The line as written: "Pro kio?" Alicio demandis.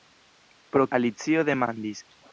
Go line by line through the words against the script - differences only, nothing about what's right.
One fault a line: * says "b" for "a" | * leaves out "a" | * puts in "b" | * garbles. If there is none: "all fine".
* leaves out "kio"